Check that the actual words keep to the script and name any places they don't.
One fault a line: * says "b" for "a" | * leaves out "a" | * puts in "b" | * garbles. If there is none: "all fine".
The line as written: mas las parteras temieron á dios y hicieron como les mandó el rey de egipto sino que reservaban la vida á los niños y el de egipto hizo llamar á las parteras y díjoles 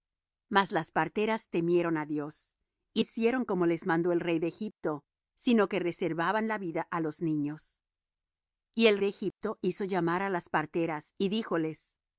all fine